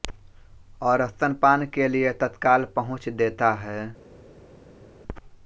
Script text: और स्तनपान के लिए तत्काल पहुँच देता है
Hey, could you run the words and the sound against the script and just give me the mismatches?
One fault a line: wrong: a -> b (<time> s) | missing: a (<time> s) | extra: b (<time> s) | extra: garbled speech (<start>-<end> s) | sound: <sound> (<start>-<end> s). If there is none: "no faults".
no faults